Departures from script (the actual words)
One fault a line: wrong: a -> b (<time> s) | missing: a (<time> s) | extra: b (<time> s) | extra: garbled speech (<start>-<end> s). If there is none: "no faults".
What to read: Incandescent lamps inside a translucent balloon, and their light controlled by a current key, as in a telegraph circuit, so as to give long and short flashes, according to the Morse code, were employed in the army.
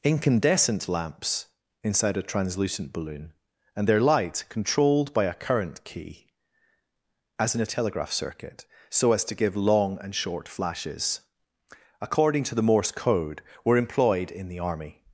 no faults